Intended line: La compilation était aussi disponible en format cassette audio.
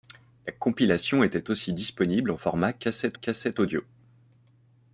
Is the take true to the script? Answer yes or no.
no